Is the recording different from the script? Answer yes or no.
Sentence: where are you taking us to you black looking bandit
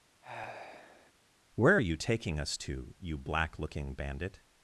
no